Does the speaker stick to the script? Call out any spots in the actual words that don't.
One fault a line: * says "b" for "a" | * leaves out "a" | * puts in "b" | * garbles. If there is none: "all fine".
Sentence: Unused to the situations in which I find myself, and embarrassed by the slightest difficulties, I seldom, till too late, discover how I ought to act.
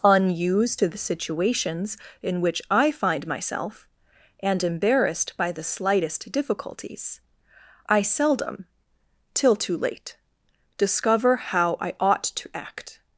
all fine